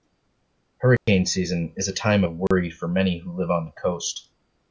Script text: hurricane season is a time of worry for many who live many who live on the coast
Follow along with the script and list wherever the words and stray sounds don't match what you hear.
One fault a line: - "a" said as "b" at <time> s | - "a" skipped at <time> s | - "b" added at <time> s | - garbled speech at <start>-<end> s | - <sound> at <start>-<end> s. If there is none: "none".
- dropout at 1.0-1.1 s
- dropout at 2.5-2.5 s
- "many who live" skipped at 3.5 s